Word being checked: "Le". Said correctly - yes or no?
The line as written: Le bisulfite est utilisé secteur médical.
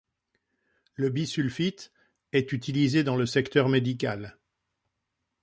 yes